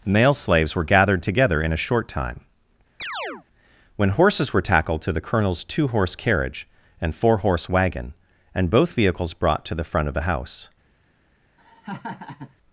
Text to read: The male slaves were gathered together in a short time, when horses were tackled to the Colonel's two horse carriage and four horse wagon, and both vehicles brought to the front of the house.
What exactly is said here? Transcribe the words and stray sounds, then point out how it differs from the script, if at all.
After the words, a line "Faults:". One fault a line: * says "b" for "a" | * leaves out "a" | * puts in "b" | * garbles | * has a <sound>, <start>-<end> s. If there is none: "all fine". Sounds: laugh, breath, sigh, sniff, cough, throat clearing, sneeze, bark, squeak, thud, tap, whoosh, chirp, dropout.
male slaves were gathered together in a short time, when horses were tackled to the Colonel's two horse carriage and four horse wagon, and both vehicles brought to the front of the house.
Faults:
* leaves out "The"
* has a chirp, 3.0-3.5 s
* has a laugh, 11.6-12.5 s